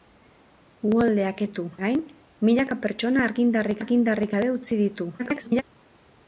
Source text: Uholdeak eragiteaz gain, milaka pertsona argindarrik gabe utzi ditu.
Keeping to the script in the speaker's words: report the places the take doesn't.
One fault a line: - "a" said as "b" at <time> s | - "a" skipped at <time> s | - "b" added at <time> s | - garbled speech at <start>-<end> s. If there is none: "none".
- "eragiteaz" said as "ditu" at 1.4 s
- "argindarrik" added at 3.8 s
- garbled speech at 5.2-5.6 s